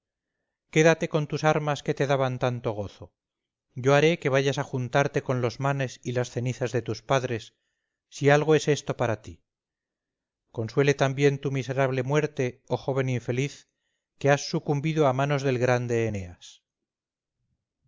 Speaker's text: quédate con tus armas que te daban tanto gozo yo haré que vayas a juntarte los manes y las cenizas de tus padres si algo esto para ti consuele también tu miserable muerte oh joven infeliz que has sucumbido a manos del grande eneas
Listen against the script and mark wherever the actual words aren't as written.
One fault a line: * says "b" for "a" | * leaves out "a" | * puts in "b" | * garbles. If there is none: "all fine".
* puts in "con"
* puts in "es"